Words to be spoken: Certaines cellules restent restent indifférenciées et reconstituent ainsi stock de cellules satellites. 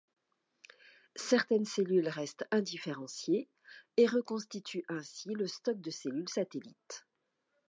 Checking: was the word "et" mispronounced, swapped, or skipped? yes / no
no